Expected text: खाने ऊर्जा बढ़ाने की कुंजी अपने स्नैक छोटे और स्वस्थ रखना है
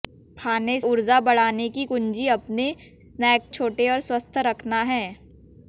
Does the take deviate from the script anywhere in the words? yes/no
no